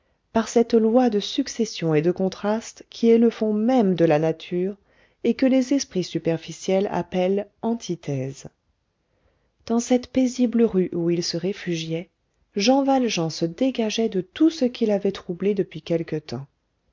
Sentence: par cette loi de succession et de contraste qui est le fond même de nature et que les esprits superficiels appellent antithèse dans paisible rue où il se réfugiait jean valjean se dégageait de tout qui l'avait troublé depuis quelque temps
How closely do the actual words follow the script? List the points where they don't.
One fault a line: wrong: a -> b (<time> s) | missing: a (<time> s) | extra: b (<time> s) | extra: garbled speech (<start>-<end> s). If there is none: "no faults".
extra: la (4.0 s)
extra: cette (9.8 s)
extra: ce (14.5 s)